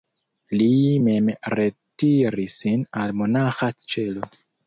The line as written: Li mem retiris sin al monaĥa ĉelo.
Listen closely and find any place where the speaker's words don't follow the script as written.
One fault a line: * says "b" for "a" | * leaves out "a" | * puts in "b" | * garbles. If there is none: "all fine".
all fine